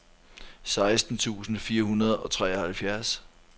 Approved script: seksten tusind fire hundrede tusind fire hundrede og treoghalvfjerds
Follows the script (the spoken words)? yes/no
no